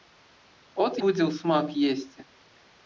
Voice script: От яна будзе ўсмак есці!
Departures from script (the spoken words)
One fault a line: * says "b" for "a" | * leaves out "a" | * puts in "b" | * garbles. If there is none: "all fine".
* leaves out "яна"